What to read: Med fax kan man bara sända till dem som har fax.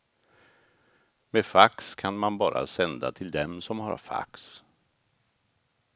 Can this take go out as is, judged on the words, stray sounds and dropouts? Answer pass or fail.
pass